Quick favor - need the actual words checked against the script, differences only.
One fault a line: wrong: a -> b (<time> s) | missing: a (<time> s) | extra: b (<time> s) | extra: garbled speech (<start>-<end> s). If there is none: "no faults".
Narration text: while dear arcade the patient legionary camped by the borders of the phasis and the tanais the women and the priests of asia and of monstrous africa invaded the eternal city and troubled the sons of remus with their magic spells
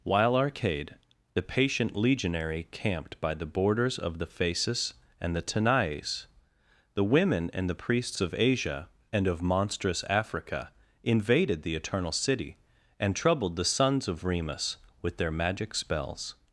missing: dear (0.3 s)